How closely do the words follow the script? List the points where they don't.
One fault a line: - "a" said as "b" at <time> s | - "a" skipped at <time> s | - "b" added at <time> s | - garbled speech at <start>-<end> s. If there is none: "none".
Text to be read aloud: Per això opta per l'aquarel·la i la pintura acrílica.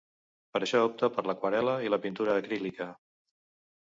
none